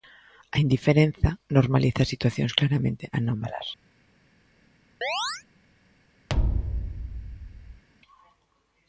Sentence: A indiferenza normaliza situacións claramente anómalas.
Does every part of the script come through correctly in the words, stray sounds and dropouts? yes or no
no